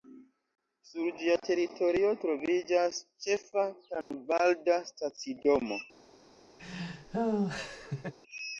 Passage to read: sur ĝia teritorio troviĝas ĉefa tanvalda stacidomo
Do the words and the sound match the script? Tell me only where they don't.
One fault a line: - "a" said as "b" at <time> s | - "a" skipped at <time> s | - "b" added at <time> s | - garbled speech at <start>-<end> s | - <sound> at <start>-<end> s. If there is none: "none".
- dropout at 4.0-4.1 s
- laugh at 6.6-8.1 s